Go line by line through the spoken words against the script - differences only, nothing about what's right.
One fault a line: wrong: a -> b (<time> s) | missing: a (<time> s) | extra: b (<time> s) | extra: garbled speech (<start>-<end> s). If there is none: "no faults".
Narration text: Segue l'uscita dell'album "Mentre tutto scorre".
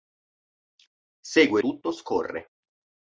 missing: l'uscita dell'album Mentre (1.6 s)